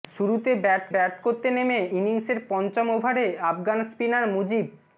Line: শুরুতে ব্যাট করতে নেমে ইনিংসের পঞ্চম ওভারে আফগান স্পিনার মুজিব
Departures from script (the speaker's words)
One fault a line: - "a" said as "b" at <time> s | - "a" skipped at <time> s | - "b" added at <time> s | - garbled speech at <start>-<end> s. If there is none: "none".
- "ব্যাট" added at 0.9 s